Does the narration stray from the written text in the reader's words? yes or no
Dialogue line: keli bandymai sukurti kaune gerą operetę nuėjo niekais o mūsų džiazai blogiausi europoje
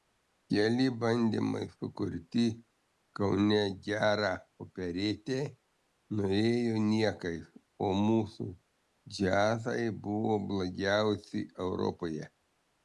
yes